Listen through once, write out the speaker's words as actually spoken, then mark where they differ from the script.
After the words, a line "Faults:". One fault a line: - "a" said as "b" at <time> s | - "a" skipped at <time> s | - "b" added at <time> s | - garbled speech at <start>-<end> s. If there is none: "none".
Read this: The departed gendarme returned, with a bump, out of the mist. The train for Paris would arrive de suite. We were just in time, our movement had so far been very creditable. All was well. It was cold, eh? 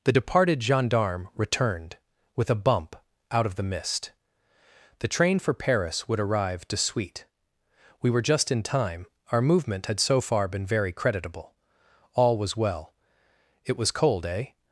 The departed gendarme returned, with a bump, out of the mist. The train for Paris would arrive de suite. We were just in time, our movement had so far been very creditable. All was well. It was cold, eh?
Faults:
none